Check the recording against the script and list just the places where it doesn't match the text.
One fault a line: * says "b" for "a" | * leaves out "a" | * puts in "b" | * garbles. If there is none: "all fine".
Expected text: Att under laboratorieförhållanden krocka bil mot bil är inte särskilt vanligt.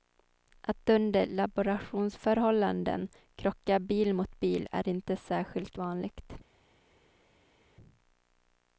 all fine